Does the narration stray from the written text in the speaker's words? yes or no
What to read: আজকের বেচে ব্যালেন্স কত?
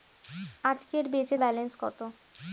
no